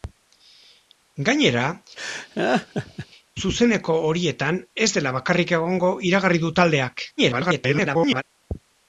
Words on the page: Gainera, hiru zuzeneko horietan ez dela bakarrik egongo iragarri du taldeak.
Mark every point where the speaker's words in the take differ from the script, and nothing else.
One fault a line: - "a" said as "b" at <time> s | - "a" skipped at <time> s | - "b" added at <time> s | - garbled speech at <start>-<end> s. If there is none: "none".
- "hiru" skipped at 1.6 s
- garbled speech at 7.2-8.2 s